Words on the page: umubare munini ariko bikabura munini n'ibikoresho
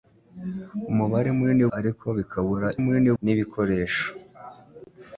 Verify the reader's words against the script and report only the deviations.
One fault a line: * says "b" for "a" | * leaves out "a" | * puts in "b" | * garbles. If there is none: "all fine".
all fine